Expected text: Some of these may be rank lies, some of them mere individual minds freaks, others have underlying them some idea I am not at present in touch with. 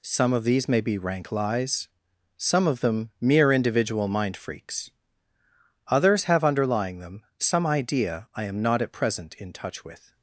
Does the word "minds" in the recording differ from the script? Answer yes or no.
yes